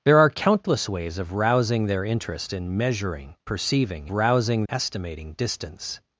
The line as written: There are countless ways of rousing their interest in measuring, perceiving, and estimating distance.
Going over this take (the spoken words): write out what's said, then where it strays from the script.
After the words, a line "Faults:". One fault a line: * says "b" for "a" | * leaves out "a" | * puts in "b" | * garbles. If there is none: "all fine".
There are countless ways of rousing their interest in measuring, perceiving, rousing estimating distance.
Faults:
* says "rousing" for "and"